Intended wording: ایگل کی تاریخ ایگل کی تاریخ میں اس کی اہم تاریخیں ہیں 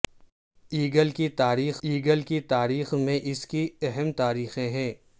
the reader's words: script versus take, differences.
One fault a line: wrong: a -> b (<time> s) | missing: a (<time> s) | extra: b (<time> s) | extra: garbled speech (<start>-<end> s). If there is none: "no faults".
no faults